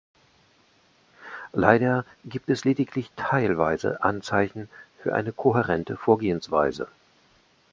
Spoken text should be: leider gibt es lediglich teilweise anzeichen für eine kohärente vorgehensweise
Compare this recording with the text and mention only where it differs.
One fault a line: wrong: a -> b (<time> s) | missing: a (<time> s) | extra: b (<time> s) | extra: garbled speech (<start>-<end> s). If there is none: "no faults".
no faults